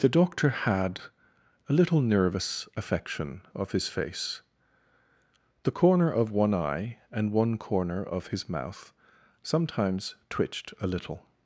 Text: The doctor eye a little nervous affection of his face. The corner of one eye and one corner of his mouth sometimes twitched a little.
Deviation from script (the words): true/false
true